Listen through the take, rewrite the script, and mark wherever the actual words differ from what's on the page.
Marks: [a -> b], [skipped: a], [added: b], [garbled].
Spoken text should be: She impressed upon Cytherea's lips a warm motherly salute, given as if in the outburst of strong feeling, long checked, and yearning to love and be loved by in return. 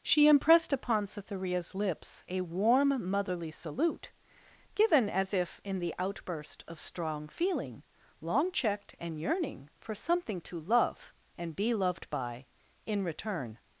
She impressed upon Cytherea's lips a warm motherly salute, given as if in the outburst of strong feeling, long checked, and yearning [added: for something] to love and be loved by in return.